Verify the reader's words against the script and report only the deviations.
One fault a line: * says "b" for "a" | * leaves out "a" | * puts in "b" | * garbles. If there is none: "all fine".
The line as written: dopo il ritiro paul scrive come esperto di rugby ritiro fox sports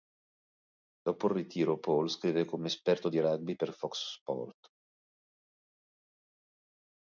* says "per" for "ritiro"